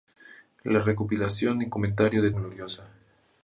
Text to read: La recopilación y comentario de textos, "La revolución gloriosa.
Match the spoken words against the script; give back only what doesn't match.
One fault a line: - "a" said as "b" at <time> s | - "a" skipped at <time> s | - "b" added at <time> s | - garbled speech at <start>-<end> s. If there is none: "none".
- "textos La revolución" skipped at 2.3 s